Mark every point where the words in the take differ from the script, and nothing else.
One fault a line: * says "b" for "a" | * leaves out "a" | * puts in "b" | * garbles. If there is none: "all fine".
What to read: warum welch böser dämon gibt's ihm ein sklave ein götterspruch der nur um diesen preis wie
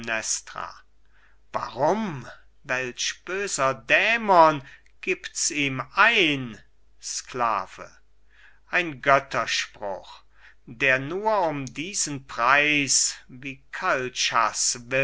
all fine